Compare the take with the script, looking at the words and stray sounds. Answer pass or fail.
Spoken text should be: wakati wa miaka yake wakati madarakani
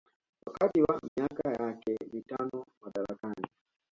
fail